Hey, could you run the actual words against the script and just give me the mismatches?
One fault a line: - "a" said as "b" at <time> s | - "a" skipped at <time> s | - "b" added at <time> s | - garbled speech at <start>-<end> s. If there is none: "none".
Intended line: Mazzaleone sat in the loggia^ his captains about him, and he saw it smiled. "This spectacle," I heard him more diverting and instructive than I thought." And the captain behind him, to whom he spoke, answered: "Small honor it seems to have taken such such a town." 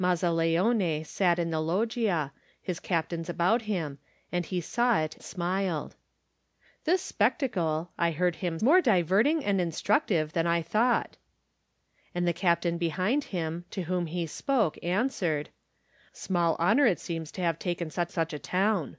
none